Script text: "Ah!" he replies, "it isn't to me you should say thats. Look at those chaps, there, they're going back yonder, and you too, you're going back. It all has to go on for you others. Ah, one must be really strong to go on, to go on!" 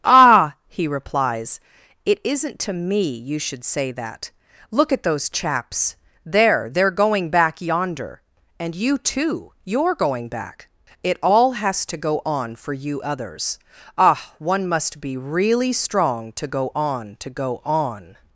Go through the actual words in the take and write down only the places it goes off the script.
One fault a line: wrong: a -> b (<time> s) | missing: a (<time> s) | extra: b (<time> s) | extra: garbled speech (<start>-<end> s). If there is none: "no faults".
wrong: thats -> that (3.9 s)